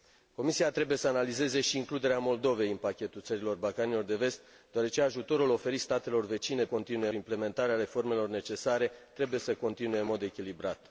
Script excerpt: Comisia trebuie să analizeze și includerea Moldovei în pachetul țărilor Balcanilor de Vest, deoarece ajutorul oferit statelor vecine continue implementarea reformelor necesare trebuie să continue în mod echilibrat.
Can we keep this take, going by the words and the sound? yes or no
yes